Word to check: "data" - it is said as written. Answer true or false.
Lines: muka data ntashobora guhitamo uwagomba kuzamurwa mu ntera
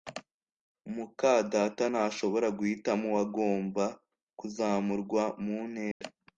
true